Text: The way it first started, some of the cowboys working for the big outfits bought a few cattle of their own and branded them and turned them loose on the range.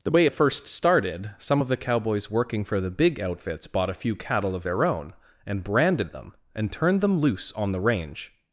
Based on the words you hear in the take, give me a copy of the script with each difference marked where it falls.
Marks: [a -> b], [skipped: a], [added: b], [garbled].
The way it first started, some of the cowboys working for the big outfits bought a few cattle of their own and branded them and turned them loose on the range.